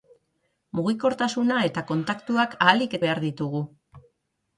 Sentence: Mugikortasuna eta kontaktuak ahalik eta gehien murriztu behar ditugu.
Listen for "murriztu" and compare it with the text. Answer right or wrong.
wrong